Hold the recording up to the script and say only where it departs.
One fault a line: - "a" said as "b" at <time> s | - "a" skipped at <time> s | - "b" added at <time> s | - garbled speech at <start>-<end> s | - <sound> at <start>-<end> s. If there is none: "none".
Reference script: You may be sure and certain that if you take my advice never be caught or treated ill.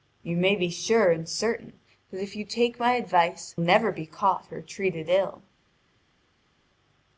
none